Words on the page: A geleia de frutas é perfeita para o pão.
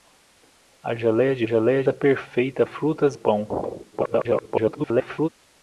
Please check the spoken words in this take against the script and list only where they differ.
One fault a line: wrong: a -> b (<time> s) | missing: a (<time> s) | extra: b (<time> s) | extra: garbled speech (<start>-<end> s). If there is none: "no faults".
wrong: frutas -> geleia (1.4 s)
wrong: para -> frutas (2.6 s)
extra: garbled speech (3.9-5.3 s)